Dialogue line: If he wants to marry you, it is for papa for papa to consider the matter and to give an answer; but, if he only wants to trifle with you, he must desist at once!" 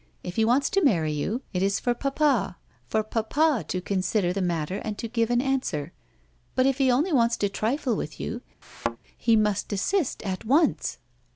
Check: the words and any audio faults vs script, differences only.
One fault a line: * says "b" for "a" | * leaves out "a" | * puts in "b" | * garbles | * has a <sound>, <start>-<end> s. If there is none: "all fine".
* has a thud, 8.6-9.0 s